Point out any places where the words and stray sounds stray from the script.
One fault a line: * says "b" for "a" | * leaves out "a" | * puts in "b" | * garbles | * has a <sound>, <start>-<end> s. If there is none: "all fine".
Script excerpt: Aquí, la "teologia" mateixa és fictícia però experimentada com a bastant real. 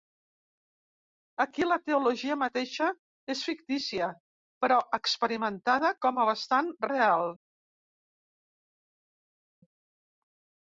all fine